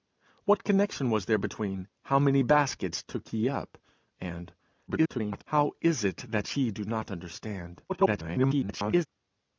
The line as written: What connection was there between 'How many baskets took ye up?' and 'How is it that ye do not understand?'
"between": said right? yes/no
yes